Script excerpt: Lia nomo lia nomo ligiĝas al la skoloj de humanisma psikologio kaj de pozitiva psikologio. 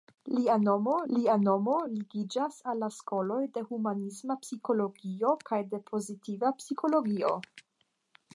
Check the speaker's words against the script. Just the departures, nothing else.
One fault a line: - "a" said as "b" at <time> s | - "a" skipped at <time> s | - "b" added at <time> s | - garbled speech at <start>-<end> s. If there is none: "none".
none